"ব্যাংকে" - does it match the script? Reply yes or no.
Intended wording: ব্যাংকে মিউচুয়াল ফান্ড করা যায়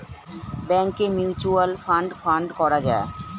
yes